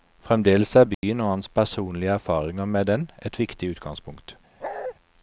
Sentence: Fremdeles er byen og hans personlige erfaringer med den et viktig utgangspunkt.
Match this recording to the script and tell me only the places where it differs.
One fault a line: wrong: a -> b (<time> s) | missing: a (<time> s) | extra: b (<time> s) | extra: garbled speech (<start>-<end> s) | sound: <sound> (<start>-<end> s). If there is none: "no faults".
sound: dropout (0.9-1.0 s)
sound: bark (4.6-4.9 s)